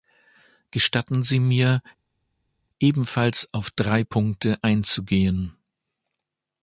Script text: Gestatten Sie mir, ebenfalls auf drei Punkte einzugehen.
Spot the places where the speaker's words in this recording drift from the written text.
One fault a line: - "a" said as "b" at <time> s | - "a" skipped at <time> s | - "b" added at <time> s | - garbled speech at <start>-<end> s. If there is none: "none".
none